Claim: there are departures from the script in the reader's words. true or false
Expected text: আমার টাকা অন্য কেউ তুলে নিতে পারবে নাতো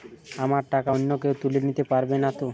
false